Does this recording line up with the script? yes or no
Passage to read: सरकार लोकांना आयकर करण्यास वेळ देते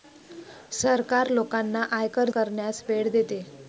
yes